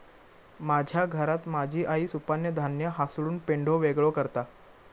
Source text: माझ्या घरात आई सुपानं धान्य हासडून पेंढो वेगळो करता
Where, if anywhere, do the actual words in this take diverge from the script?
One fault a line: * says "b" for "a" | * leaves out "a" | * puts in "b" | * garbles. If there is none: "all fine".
* puts in "माझी"